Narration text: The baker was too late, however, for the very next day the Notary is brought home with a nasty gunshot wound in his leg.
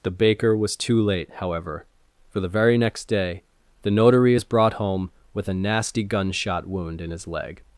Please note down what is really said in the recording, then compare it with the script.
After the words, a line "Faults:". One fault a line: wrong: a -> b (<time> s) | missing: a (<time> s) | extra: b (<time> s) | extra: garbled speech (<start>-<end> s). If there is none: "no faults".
The baker was too late, however, for the very next day the Notary is brought home with a nasty gunshot wound in his leg.
Faults:
no faults